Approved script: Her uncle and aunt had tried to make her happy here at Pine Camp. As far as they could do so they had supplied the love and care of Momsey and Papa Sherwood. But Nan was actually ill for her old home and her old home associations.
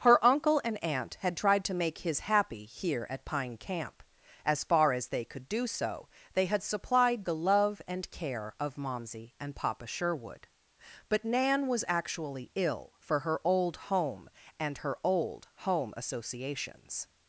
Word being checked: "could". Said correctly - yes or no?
yes